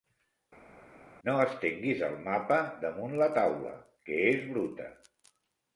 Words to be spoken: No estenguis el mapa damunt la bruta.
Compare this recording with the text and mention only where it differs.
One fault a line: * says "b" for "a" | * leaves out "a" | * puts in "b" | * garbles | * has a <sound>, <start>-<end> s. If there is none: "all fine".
* puts in "taula que és"